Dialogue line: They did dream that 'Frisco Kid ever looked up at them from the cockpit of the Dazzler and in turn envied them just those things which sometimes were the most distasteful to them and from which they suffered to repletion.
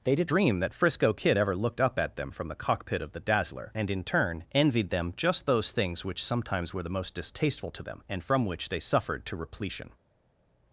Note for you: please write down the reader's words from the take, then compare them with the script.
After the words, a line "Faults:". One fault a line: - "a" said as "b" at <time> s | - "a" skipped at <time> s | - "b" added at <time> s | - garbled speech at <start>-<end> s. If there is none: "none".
They did dream that 'Frisco Kid ever looked up at them from the cockpit of the Dazzler and in turn envied them just those things which sometimes were the most distasteful to them and from which they suffered to repletion.
Faults:
none